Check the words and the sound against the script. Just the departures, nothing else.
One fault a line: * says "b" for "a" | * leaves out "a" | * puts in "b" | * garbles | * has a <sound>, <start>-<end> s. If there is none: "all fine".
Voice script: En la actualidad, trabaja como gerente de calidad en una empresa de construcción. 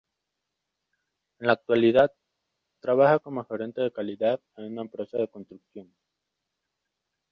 all fine